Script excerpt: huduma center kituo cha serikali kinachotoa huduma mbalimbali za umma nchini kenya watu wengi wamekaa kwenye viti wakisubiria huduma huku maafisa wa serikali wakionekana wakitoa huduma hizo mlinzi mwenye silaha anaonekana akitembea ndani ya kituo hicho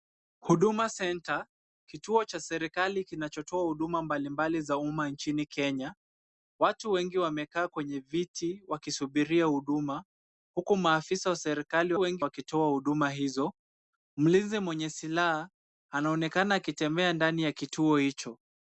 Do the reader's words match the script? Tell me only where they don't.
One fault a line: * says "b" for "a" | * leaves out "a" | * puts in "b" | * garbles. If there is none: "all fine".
* says "wengi" for "wakionekana"